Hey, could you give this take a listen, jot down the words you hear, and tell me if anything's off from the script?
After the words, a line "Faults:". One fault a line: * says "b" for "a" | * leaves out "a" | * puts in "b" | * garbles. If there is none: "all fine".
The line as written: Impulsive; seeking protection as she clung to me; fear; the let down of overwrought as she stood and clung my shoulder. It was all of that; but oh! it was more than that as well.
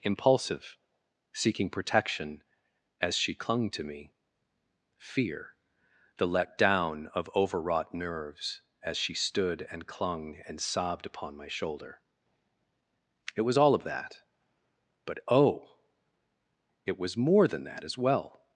Impulsive; seeking protection as she clung to me; fear; the let down of overwrought nerves as she stood and clung and sobbed upon my shoulder. It was all of that; but oh! it was more than that as well.
Faults:
* puts in "nerves"
* puts in "and sobbed upon"